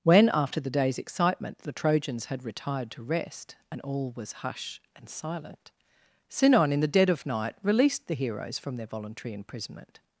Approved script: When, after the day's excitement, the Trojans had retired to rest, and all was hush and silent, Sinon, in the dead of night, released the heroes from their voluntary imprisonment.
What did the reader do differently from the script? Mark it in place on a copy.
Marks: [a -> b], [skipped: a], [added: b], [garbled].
When, after the day's excitement, the Trojans had retired to rest, and all was hush and silent, Sinon, in the dead of night, released the heroes from their voluntary imprisonment.